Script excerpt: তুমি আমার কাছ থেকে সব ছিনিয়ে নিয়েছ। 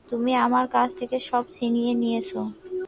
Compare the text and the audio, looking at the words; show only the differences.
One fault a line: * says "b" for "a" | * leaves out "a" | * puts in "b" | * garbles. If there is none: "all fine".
all fine